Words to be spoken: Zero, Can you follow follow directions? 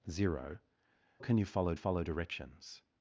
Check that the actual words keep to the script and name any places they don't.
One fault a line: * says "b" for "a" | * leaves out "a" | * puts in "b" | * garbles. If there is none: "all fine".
all fine